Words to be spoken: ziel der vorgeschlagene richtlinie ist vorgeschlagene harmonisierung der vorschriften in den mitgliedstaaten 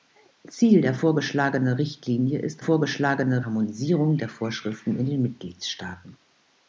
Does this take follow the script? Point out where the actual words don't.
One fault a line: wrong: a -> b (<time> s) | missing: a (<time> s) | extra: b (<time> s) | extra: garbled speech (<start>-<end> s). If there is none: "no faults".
no faults